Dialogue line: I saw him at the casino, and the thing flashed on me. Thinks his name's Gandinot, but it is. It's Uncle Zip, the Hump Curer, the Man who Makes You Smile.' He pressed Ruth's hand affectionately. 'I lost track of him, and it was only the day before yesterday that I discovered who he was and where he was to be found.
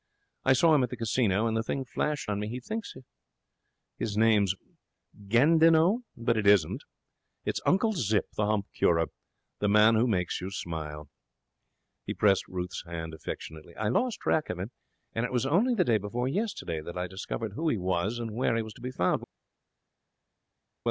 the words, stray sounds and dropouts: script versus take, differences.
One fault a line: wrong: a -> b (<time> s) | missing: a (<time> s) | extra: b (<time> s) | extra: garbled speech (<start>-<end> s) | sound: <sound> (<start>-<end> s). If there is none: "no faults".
extra: He (2.5 s)
wrong: is -> isn't (6.5 s)